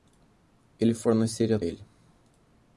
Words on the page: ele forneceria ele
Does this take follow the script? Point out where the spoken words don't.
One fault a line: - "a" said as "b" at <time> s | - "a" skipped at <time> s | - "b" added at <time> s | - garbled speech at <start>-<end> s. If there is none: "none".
none